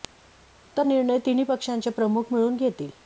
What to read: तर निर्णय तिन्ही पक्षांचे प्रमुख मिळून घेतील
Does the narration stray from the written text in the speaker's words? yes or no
no